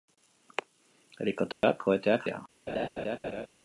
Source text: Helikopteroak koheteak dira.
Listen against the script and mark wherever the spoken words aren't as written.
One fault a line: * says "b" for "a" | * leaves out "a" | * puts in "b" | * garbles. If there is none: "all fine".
all fine